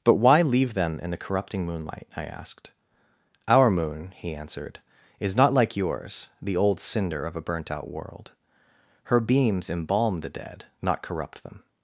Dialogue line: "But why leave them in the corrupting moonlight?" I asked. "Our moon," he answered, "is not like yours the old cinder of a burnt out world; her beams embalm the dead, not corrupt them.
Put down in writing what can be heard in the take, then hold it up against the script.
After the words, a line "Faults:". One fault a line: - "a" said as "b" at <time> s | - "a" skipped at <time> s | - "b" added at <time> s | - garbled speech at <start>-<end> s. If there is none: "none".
"But why leave them in the corrupting moonlight?" I asked. "Our moon," he answered, "is not like yours the old cinder of a burnt out world; her beams embalm the dead, not corrupt them.
Faults:
none